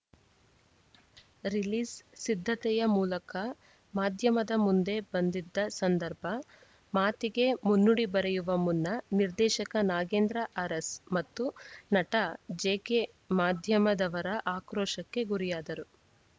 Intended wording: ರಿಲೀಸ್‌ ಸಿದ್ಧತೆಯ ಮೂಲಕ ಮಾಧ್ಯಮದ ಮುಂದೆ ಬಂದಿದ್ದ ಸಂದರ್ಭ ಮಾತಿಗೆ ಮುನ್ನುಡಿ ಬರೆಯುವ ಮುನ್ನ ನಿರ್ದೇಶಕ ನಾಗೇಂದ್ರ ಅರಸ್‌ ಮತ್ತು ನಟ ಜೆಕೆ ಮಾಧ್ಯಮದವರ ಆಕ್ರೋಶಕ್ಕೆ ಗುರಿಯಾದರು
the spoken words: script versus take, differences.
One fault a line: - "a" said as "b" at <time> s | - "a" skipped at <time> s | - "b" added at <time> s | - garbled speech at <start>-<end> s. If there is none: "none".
none